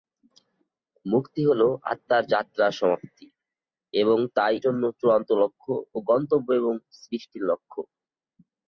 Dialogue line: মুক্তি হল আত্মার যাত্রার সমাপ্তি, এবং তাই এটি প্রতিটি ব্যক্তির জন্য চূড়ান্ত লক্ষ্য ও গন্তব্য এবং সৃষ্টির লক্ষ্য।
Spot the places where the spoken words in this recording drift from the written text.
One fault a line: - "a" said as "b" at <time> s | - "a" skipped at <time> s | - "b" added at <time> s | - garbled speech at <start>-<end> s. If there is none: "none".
- "এটি প্রতিটি ব্যক্তির" skipped at 4.5 s